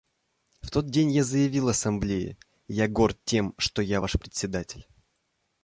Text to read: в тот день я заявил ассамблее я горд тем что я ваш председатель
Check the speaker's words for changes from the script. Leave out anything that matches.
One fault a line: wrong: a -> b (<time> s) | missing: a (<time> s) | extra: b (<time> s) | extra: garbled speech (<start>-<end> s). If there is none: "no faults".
no faults